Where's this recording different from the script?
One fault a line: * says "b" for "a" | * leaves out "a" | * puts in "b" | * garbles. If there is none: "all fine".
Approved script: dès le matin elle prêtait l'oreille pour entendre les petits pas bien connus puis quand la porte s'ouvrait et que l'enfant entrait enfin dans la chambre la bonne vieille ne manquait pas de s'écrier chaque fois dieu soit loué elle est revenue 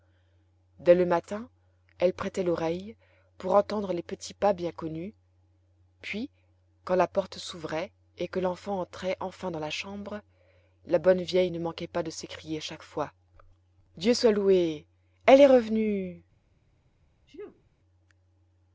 all fine